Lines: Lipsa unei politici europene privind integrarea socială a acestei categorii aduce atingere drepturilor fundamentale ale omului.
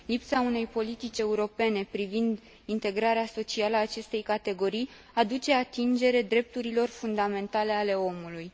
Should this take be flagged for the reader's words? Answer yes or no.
no